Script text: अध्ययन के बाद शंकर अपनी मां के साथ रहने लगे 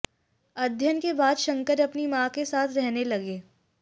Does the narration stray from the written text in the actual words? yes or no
no